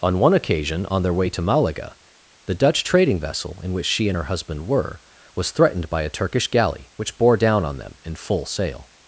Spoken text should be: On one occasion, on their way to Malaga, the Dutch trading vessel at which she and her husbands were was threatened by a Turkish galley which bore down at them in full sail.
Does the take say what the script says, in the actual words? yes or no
no